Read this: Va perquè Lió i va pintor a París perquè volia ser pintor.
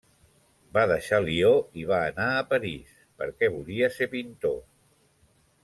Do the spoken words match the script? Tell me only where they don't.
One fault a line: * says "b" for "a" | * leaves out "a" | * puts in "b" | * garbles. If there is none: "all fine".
* says "deixar" for "perquè"
* says "anar" for "pintor"